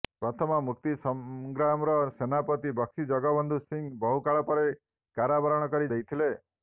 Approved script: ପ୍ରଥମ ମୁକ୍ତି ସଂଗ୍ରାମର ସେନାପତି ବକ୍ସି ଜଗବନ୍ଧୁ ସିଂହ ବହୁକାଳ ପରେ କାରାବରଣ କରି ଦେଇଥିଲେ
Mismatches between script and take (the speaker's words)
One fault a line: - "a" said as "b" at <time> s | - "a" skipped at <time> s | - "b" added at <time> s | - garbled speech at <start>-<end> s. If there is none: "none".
none